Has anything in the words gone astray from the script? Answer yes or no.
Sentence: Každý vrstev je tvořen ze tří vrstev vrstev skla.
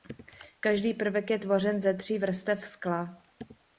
yes